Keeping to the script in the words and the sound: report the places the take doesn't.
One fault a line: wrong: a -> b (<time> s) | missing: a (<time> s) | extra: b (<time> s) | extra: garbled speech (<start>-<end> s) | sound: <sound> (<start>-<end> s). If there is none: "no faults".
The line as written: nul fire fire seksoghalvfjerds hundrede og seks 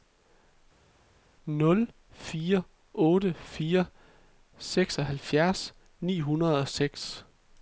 extra: otte (2.9 s)
extra: ni (6.0 s)